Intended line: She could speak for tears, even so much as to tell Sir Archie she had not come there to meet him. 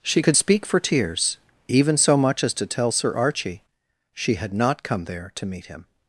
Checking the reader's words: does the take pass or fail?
pass